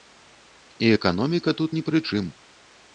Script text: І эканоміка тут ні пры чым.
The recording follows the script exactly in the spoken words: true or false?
true